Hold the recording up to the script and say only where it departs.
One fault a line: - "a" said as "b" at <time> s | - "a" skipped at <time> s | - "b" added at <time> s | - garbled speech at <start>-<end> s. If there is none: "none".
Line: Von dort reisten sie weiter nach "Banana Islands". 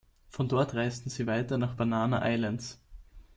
none